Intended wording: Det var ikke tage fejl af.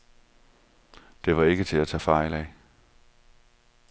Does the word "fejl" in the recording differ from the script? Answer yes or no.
no